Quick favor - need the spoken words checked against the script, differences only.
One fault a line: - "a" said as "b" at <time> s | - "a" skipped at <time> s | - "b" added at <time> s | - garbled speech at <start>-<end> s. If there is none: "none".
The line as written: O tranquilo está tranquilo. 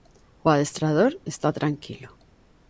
- "tranquilo" said as "adestrador" at 0.5 s